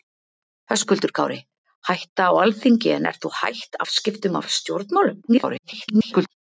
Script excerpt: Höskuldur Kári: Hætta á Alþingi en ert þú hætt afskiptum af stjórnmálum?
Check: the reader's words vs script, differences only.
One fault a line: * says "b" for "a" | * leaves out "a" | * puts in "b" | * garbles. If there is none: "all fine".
* garbles